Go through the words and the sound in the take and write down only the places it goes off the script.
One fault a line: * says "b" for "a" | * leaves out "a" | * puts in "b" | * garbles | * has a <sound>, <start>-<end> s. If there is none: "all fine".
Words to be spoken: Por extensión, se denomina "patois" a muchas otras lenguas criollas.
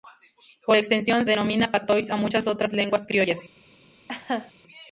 * leaves out "se"
* has a laugh, 4.1-4.5 s